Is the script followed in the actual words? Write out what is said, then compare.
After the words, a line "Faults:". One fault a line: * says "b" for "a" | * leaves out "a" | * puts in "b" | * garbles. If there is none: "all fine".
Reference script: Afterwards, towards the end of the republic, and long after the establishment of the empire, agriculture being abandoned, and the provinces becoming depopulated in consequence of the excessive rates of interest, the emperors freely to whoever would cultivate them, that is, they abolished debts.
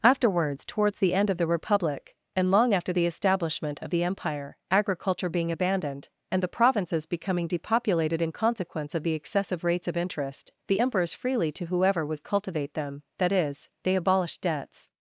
Afterwards, towards the end of the republic, and long after the establishment of the empire, agriculture being abandoned, and the provinces becoming depopulated in consequence of the excessive rates of interest, the emperors freely to whoever would cultivate them, that is, they abolished debts.
Faults:
all fine